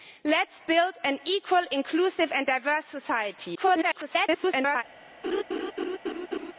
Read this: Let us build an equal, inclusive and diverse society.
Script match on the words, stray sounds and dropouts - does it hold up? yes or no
no